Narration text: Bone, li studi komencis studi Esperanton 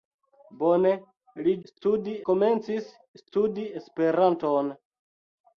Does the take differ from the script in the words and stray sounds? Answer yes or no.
no